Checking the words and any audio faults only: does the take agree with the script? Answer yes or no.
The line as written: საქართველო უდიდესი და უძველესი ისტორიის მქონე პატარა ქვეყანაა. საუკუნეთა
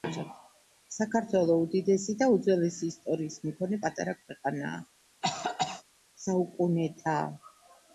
no